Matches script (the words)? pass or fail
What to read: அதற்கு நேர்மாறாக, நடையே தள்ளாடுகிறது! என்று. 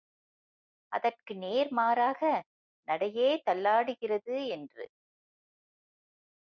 pass